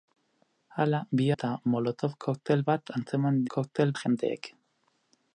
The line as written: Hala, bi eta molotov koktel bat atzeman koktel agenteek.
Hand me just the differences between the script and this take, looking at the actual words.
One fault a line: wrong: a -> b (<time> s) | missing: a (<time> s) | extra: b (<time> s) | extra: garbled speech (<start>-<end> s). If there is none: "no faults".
no faults